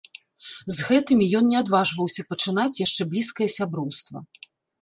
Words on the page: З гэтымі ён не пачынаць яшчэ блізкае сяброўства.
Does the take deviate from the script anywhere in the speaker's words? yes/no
yes